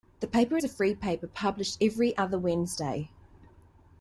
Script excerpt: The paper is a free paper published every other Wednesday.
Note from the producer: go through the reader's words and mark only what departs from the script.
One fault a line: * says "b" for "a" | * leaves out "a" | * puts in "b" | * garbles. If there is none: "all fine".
* leaves out "is"